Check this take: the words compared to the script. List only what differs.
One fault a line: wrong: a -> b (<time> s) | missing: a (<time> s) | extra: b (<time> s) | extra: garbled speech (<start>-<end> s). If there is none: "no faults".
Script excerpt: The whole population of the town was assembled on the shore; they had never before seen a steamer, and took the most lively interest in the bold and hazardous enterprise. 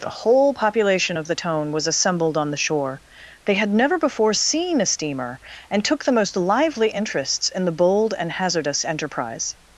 wrong: town -> tone (1.3 s)
wrong: interest -> interests (6.9 s)